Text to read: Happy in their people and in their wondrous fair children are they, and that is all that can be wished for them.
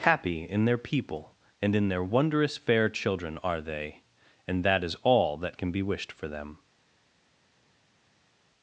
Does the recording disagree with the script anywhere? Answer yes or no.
no